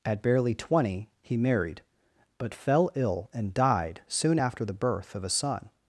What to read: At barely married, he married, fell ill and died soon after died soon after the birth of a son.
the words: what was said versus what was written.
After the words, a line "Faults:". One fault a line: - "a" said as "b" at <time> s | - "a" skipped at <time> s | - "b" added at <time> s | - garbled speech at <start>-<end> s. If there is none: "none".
At barely twenty, he married, but fell ill and died soon after the birth of a son.
Faults:
- "married" said as "twenty" at 0.6 s
- "but" added at 2.4 s
- "died soon after" skipped at 4.6 s